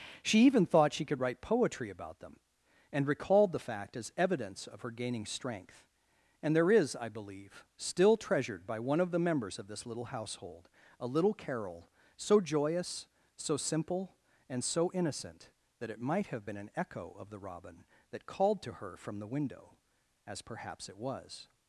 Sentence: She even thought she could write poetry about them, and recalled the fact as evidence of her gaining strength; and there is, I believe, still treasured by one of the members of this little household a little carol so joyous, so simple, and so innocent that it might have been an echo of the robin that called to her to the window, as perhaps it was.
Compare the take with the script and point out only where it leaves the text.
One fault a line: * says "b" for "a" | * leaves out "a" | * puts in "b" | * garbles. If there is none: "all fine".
* says "from" for "to"